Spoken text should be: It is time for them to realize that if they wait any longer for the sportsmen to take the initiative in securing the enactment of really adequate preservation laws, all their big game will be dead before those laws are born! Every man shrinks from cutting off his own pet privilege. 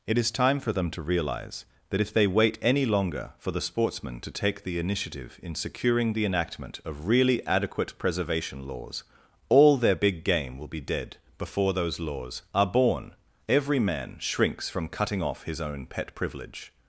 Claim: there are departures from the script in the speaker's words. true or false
false